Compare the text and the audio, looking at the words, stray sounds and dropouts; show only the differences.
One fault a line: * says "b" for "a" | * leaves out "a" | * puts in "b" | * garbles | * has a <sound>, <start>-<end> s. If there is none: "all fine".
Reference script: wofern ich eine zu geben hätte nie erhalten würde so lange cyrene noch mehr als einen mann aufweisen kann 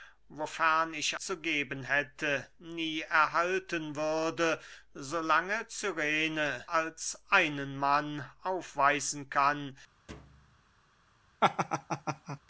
* leaves out "eine"
* leaves out "noch mehr"
* has a thud, 10.1-10.6 s
* has a laugh, 11.4-12.4 s